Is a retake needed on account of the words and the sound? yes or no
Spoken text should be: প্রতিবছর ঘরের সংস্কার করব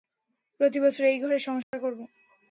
yes